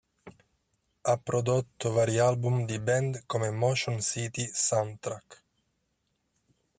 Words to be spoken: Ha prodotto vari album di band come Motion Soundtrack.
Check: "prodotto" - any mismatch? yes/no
no